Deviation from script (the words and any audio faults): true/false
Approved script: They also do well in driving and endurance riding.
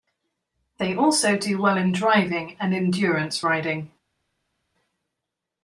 false